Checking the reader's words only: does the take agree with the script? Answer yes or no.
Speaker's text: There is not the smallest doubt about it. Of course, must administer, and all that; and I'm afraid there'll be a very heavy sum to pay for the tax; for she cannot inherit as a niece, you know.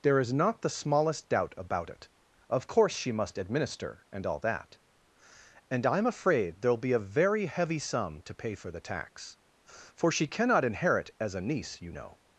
no